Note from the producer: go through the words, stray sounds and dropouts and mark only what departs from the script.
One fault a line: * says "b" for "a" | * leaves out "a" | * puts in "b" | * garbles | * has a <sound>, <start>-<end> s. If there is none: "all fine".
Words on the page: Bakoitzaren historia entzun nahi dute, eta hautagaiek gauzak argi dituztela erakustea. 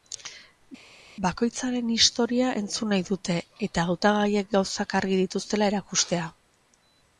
all fine